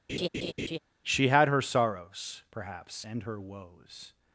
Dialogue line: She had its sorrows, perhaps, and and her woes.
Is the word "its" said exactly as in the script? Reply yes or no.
no